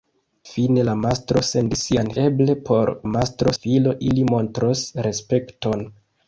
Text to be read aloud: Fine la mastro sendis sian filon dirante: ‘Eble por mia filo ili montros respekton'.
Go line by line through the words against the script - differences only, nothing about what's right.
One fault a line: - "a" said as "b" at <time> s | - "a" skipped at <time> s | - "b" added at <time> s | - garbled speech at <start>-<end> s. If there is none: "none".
- "filon dirante" skipped at 2.1 s
- "mia" said as "mastro" at 3.1 s